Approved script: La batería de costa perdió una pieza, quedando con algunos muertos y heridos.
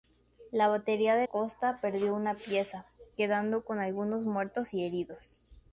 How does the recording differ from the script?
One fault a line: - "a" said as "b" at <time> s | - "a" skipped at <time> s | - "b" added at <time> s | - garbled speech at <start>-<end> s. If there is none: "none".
none